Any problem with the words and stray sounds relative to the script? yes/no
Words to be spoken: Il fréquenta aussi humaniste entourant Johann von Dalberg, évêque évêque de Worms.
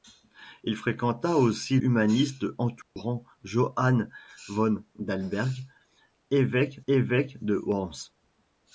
yes